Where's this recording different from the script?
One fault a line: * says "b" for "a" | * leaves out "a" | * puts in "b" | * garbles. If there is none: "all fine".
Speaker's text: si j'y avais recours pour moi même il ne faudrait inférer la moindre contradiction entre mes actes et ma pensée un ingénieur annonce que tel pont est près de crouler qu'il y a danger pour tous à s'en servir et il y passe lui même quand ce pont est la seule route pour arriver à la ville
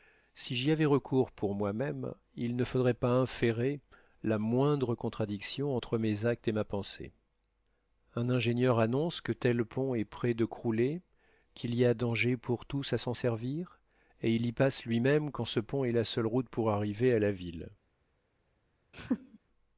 * puts in "pas"